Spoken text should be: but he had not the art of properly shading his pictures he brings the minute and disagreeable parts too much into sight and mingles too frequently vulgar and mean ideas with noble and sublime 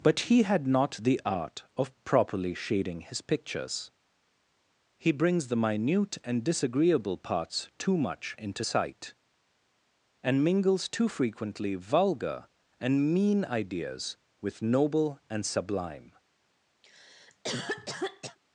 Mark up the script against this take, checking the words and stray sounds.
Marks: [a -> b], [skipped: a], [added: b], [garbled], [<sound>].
but he had not the art of properly shading his pictures he brings the minute and disagreeable parts too much into sight and mingles too frequently vulgar and mean ideas with noble and sublime [cough]